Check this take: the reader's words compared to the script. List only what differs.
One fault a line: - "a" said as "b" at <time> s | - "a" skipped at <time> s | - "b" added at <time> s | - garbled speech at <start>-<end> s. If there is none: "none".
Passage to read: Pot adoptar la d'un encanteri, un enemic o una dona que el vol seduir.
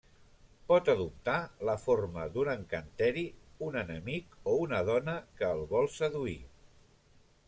- "forma" added at 1.8 s